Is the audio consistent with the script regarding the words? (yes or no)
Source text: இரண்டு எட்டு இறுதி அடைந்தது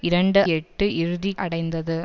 yes